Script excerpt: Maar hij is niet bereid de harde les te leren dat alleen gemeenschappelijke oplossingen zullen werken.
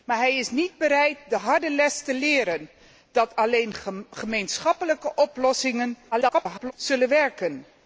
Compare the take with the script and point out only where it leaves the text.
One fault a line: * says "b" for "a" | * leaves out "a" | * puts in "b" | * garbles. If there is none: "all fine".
* garbles